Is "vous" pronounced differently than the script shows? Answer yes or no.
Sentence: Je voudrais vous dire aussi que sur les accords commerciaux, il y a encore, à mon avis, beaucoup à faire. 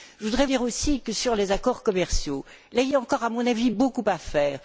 yes